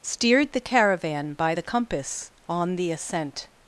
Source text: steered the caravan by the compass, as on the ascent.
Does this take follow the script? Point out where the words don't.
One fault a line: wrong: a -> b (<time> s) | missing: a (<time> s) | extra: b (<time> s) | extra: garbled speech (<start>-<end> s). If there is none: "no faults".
missing: as (2.3 s)